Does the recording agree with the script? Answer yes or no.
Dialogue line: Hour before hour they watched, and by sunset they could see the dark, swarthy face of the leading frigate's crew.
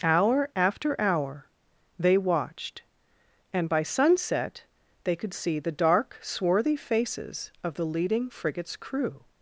no